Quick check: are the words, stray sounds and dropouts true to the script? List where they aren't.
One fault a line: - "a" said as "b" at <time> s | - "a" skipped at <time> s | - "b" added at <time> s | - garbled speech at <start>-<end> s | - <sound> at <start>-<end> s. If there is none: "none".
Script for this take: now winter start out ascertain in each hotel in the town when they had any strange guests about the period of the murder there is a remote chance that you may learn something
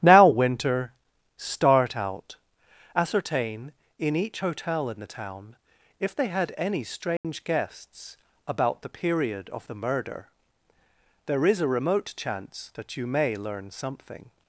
- "when" said as "if" at 6.0 s
- dropout at 7.2-7.2 s